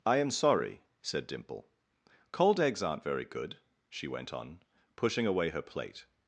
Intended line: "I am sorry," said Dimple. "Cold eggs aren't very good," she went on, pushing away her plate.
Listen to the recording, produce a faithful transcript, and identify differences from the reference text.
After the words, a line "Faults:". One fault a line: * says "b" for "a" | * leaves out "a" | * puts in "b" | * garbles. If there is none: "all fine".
"I am sorry," said Dimple. "Cold eggs aren't very good," she went on, pushing away her plate.
Faults:
all fine